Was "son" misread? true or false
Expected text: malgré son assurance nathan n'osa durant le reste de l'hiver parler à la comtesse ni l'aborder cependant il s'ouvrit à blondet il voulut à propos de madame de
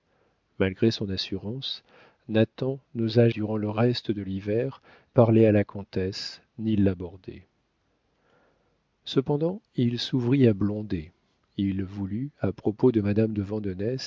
false